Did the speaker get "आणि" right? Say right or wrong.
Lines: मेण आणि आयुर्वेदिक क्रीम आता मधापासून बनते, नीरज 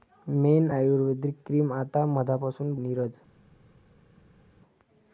wrong